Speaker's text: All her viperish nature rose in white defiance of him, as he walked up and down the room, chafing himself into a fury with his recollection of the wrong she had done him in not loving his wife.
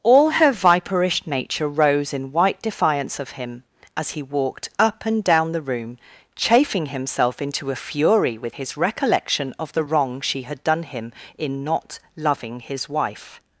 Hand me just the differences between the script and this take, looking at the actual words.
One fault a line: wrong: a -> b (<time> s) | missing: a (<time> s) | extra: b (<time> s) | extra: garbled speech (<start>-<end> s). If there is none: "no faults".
no faults